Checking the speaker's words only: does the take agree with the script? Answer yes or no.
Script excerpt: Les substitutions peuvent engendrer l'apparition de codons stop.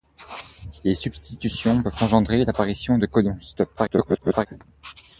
no